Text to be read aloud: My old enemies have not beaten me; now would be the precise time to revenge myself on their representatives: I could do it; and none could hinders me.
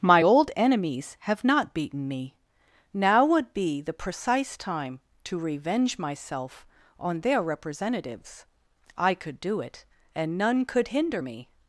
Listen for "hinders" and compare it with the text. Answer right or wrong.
wrong